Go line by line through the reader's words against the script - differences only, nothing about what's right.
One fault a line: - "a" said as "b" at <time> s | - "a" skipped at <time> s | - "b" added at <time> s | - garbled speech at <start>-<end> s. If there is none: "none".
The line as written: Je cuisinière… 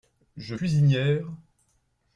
none